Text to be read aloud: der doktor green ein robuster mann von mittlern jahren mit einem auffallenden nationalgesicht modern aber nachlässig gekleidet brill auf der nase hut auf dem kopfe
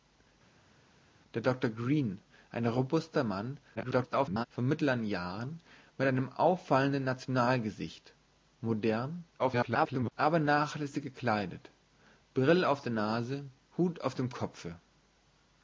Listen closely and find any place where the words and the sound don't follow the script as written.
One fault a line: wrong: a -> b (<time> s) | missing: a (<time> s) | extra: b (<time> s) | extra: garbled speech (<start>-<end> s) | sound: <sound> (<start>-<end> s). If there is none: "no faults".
extra: garbled speech (3.8-4.5 s)
extra: garbled speech (9.4-10.1 s)